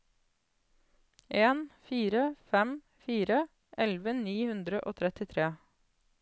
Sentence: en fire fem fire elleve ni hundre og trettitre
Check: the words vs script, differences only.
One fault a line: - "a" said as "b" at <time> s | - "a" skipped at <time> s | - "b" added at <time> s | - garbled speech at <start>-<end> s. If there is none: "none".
none